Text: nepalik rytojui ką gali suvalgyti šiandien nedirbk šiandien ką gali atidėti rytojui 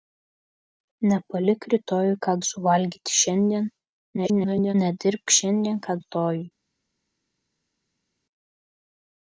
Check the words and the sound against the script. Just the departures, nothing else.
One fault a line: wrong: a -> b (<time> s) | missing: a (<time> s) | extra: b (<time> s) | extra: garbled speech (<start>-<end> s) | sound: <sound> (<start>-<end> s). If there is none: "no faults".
missing: gali (2.3 s)
extra: garbled speech (4.2-4.8 s)
missing: gali atidėti (5.9 s)